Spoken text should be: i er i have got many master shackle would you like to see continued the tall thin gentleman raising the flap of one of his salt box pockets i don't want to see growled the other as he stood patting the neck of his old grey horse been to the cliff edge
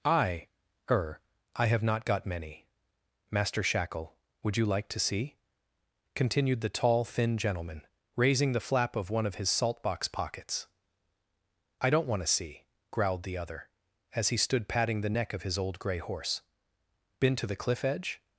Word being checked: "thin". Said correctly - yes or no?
yes